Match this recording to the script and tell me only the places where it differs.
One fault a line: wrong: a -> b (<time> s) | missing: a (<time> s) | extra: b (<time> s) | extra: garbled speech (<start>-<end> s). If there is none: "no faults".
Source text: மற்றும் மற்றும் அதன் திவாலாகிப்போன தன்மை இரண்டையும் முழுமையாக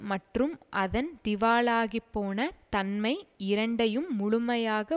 missing: மற்றும் (0.5 s)